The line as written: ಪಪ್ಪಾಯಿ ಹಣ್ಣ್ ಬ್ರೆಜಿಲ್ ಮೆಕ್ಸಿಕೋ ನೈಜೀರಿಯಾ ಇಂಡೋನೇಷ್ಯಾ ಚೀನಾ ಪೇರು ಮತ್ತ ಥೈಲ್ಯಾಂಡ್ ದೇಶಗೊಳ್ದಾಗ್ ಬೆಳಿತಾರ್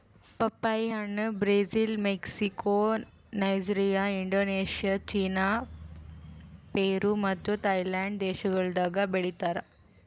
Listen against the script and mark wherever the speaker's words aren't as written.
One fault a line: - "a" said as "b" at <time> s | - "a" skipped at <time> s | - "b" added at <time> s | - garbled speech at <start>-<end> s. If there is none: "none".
none